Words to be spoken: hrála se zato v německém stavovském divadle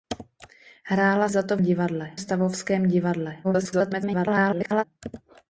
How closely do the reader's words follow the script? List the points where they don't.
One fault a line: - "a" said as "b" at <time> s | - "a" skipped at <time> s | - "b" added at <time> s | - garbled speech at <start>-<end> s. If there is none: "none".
- "se" skipped at 1.3 s
- "německém" said as "divadle" at 1.6 s
- garbled speech at 3.4-4.8 s